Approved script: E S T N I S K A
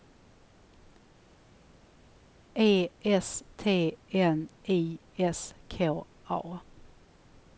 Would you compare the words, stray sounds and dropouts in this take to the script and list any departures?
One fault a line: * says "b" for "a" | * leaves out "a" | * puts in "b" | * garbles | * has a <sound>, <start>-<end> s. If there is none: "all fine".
all fine